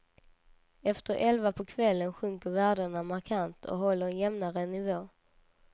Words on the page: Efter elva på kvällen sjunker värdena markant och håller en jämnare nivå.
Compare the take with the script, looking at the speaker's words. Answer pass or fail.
pass